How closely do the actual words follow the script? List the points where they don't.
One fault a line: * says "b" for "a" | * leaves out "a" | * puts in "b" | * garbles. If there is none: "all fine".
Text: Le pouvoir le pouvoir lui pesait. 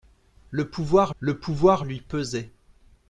all fine